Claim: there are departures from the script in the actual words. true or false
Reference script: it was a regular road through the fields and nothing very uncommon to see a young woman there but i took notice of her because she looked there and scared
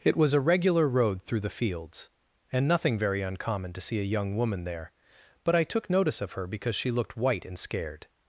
true